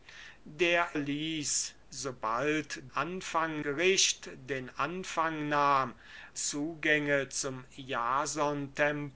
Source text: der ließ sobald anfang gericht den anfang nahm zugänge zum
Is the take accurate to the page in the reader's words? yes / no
yes